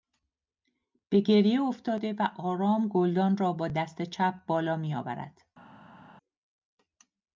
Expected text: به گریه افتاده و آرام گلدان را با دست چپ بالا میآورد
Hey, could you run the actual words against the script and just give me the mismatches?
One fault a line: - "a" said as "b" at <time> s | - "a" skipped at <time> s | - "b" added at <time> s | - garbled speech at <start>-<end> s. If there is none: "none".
none